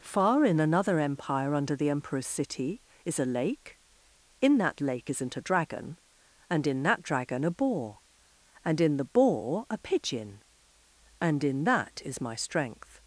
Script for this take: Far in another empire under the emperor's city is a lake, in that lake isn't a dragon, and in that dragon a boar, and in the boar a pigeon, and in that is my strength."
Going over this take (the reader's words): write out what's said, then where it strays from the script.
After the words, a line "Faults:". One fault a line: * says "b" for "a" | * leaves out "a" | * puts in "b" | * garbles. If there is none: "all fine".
Far in another empire under the emperor's city is a lake, in that lake isn't a dragon, and in that dragon a boar, and in the boar a pigeon, and in that is my strength."
Faults:
all fine